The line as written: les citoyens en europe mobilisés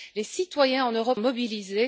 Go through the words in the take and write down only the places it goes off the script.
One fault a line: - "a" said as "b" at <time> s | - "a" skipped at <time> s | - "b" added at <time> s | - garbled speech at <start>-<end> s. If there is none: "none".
none